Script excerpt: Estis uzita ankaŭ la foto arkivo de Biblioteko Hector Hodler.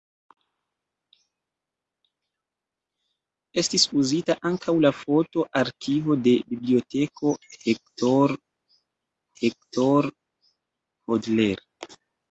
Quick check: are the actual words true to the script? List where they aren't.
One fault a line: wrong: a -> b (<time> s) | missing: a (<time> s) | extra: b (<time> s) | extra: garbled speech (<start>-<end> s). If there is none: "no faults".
extra: Hector (9.4 s)